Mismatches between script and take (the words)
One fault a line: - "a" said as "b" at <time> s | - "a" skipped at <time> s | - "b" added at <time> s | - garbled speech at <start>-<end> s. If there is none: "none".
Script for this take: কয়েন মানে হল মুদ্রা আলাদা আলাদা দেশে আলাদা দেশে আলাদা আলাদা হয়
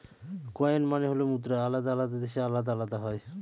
- "দেশে আলাদা" skipped at 2.7 s